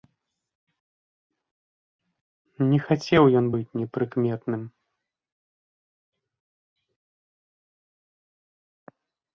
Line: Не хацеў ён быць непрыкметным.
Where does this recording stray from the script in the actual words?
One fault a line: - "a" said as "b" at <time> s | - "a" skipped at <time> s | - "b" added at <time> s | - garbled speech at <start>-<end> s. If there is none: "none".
none